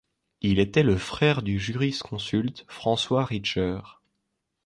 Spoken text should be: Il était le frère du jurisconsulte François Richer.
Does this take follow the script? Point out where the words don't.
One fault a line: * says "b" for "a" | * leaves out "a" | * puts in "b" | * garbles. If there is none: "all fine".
all fine